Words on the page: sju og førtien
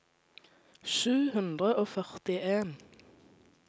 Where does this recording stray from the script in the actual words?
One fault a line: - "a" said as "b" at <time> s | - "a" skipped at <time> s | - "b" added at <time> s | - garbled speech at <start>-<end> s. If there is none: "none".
- "hundre" added at 1.3 s